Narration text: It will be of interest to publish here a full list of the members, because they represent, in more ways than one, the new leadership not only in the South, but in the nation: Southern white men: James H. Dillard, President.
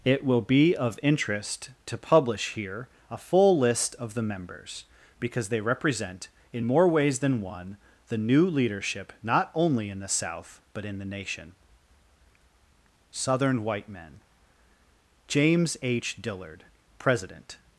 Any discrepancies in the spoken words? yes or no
no